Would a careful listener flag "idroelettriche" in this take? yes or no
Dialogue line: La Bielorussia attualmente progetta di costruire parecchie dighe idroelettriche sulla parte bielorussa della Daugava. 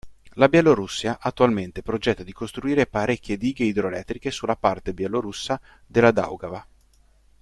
no